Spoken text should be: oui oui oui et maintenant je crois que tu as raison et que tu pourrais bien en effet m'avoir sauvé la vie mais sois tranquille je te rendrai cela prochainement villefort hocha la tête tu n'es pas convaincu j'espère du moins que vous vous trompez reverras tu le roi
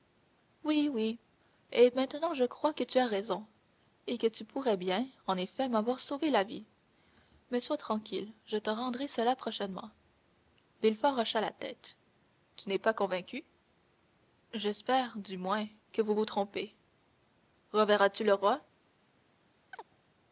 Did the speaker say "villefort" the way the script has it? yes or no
yes